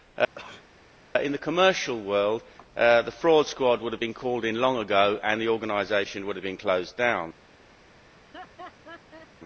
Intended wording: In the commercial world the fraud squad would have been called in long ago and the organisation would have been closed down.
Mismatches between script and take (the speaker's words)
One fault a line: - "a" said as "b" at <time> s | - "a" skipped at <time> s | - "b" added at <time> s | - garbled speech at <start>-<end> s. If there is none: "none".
none